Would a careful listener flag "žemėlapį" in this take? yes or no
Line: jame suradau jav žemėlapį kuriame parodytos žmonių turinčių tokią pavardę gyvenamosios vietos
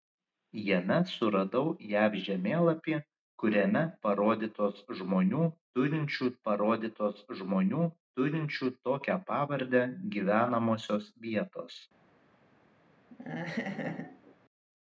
no